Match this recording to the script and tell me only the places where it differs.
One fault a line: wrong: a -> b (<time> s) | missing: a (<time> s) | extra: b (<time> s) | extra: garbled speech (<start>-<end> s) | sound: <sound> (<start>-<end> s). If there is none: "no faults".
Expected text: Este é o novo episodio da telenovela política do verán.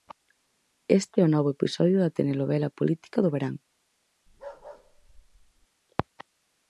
sound: bark (4.3-5.7 s)